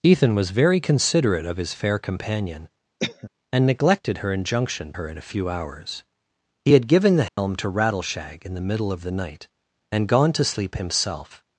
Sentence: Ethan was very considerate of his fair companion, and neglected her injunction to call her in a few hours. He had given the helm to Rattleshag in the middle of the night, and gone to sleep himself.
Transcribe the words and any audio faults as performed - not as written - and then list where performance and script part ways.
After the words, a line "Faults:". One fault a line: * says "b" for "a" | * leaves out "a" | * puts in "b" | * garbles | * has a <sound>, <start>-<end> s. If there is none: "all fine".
Ethan was very considerate of his fair companion, and neglected her injunction her in a few hours. He had given the helm to Rattleshag in the middle of the night, and gone to sleep himself.
Faults:
* has a cough, 3.0-3.3 s
* leaves out "to call"
* has a dropout, 7.3-7.4 s